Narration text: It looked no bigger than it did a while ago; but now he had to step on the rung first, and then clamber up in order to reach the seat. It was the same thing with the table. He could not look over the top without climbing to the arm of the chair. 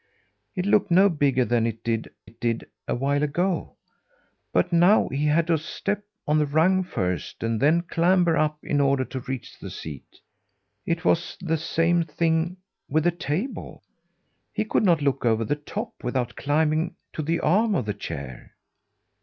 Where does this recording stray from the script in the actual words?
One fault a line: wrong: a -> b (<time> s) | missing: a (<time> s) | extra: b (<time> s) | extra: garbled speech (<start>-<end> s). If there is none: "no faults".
extra: it did (2.2 s)